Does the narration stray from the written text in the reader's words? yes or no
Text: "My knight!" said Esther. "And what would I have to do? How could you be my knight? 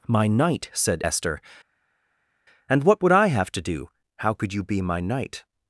no